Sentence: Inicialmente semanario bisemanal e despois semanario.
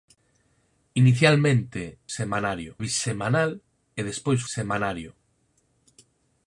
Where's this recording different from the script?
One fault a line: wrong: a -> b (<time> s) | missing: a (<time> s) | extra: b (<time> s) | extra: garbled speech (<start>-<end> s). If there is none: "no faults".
no faults